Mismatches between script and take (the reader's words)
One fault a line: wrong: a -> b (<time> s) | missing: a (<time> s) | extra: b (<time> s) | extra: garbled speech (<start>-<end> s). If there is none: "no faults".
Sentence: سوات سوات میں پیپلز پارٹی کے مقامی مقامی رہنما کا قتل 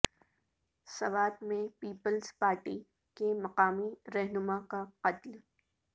missing: سوات (1.4 s)
missing: مقامی (3.9 s)